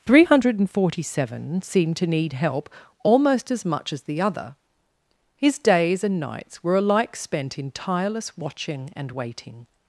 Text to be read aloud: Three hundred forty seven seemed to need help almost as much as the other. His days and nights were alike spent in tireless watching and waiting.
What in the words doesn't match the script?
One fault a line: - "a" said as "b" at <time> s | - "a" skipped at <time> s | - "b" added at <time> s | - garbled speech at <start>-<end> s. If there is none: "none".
none